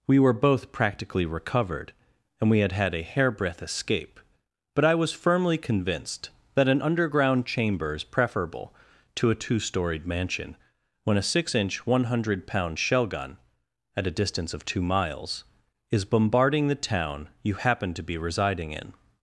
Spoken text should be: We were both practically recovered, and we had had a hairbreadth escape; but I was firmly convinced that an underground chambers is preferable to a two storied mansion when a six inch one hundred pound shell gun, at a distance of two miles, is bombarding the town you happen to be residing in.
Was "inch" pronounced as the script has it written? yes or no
yes